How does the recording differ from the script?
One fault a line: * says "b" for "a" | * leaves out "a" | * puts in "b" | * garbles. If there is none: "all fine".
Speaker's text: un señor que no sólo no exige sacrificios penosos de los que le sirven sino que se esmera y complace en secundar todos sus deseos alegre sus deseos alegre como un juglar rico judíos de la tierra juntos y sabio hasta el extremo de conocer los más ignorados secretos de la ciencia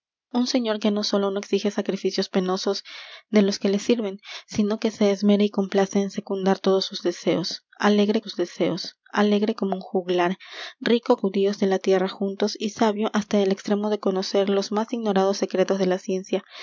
all fine